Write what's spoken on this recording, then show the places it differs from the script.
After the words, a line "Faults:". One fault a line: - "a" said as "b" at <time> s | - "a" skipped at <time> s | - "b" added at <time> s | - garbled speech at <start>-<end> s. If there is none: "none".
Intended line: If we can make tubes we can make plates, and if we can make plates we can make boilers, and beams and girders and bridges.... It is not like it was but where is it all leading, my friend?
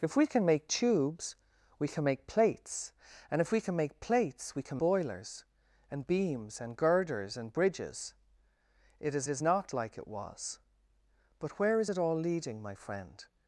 If we can make tubes we can make plates, and if we can make plates we can boilers, and beams and girders and bridges.... It is is not like it was but where is it all leading, my friend?
Faults:
- "make" skipped at 4.8 s
- "is" added at 9.3 s